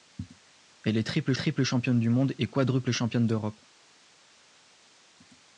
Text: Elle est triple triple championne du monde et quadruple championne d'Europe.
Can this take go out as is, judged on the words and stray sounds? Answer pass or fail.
pass